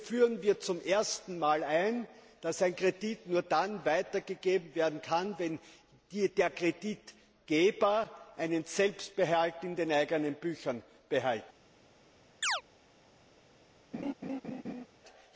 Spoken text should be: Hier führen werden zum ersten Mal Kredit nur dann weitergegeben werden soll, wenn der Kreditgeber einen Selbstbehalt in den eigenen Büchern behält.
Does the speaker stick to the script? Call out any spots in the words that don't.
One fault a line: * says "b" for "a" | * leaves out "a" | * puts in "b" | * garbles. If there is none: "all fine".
* says "wir" for "werden"
* puts in "ein dass ein"
* says "kann" for "soll"